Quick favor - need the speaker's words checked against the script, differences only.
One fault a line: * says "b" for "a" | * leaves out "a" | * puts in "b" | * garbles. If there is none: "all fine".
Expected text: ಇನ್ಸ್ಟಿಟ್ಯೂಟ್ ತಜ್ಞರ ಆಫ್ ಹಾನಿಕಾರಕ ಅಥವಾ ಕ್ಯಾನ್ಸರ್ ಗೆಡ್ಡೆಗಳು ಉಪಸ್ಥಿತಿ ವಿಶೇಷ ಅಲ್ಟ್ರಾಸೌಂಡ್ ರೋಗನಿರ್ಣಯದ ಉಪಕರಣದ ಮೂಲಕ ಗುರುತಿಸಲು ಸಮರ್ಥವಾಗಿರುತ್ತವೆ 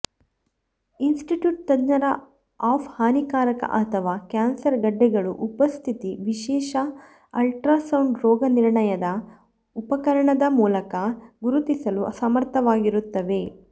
all fine